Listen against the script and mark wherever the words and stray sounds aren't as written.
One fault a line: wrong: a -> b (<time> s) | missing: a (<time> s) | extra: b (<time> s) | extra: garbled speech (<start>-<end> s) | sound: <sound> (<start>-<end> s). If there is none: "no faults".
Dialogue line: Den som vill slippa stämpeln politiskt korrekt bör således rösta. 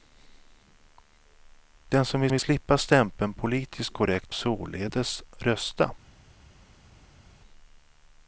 extra: vill (2.3 s)
missing: bör (4.3 s)